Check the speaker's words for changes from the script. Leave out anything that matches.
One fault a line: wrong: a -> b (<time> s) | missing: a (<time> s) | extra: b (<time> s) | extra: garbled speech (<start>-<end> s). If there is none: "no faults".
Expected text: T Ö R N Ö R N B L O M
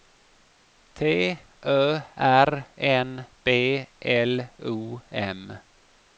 missing: Ö R N (3.3 s)